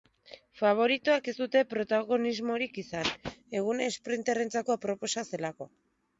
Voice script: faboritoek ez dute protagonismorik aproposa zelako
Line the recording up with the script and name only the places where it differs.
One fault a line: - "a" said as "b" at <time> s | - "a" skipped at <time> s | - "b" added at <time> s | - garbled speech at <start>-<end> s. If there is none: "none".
- "izan eguna esprinterrentzako" added at 2.8 s